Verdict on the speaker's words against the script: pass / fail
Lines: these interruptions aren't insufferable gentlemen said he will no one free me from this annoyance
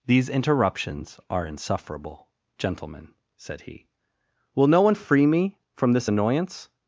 fail